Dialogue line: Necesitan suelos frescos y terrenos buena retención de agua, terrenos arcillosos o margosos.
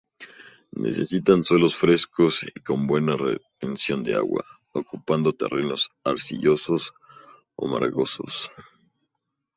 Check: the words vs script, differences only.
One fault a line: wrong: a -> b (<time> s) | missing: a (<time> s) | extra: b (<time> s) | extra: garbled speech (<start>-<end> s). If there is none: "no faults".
wrong: terrenos -> con (2.6 s)
extra: ocupando (4.7 s)